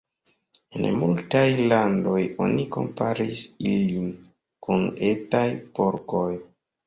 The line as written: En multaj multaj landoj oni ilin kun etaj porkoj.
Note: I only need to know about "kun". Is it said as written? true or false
true